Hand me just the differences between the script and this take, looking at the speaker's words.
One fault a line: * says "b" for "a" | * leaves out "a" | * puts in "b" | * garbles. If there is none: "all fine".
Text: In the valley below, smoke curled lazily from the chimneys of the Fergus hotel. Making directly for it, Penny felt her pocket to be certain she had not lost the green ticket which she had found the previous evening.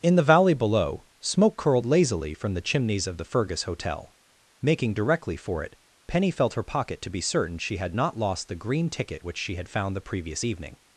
all fine